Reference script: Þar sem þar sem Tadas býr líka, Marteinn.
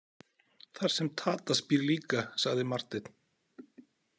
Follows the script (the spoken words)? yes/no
no